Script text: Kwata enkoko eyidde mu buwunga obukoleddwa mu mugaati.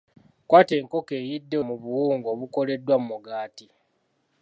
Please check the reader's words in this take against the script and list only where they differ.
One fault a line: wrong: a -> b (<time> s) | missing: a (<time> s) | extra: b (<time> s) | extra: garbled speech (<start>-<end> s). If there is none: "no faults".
no faults